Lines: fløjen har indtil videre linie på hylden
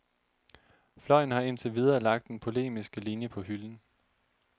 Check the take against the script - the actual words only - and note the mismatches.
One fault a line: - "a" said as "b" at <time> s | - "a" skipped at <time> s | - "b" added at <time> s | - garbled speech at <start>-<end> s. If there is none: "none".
- "lagt den polemiske" added at 2.0 s